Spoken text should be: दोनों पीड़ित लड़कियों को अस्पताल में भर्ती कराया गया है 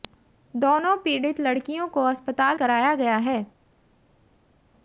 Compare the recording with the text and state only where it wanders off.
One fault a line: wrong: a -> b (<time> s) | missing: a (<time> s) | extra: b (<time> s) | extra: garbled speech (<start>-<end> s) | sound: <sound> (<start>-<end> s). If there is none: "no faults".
missing: में भर्ती (2.6 s)